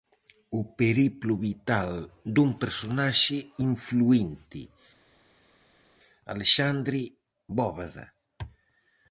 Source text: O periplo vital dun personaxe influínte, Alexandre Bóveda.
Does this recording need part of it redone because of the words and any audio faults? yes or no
no